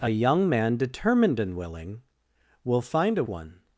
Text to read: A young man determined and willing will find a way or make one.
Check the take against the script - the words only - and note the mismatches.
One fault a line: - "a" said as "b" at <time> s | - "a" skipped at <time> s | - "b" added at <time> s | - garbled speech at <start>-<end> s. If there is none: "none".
- "way or make" skipped at 3.2 s